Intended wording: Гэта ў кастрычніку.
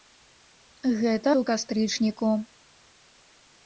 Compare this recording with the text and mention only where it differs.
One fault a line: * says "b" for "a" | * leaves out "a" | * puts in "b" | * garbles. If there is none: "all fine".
all fine